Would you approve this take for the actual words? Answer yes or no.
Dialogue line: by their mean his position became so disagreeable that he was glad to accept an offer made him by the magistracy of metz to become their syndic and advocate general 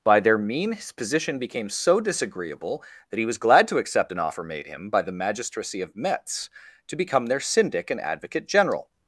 yes